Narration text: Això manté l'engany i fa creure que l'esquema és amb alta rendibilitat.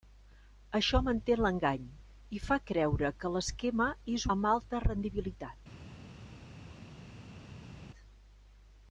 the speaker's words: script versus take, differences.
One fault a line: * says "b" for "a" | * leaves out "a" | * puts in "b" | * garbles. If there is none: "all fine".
all fine